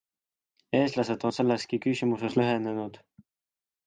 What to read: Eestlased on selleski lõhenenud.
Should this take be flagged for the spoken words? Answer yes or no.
yes